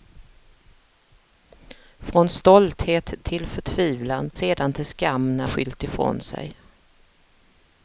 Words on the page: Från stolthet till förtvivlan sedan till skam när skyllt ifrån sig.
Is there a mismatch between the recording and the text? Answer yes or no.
no